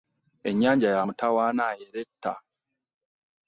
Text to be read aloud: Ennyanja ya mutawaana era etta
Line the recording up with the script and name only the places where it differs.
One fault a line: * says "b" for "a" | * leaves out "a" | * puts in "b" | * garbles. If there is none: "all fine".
all fine